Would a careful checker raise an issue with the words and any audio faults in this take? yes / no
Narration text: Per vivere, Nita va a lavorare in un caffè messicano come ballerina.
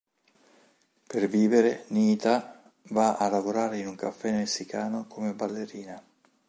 no